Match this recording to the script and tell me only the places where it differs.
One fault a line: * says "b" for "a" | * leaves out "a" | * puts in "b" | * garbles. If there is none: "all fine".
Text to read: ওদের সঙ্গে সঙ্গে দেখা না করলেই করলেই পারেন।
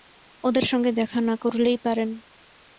* leaves out "সঙ্গে"
* leaves out "করলেই"